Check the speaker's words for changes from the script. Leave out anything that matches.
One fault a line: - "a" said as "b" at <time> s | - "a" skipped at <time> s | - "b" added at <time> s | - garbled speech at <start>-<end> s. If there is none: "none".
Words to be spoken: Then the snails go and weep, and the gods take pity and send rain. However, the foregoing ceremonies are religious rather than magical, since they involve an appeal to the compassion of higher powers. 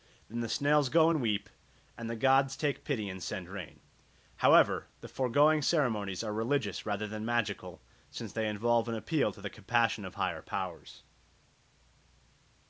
none